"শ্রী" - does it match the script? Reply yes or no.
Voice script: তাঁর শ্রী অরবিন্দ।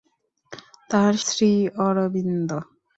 yes